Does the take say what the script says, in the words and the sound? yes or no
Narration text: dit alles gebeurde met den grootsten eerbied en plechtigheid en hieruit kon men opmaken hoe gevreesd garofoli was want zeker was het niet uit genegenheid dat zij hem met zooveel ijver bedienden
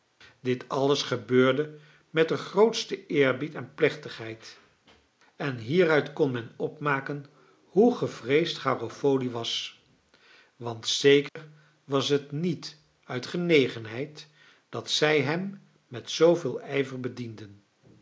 no